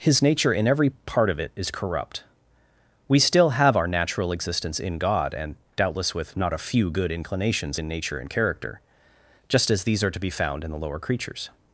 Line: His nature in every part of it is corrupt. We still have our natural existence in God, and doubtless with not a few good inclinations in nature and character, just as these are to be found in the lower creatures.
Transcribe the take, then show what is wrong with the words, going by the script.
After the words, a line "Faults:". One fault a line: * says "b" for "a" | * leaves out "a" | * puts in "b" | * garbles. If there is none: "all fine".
His nature in every part of it is corrupt. We still have our natural existence in God, and doubtless with not a few good inclinations in nature and character, just as these are to be found in the lower creatures.
Faults:
all fine